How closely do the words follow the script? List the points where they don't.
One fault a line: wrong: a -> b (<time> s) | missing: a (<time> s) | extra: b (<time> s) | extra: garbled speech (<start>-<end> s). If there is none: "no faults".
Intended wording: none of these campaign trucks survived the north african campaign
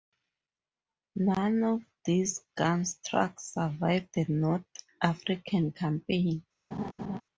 wrong: campaign -> gun (2.6 s)